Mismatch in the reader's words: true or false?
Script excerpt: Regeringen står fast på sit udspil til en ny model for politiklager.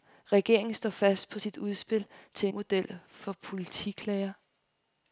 true